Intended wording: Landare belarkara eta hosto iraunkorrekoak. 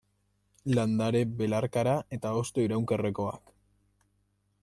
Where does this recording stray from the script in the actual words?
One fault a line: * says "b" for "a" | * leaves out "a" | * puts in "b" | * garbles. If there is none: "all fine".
all fine